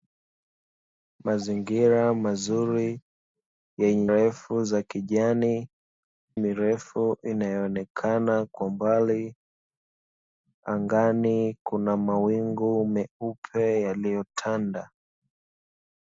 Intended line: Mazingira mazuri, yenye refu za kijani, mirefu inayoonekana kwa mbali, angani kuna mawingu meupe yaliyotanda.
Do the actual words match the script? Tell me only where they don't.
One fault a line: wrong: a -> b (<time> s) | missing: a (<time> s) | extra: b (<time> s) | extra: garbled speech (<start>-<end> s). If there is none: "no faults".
no faults